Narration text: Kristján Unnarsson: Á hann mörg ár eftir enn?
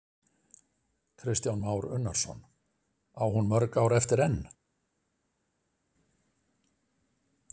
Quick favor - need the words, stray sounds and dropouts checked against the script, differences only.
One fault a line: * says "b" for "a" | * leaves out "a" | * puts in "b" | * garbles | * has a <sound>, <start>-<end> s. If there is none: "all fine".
* puts in "Már"
* says "hún" for "hann"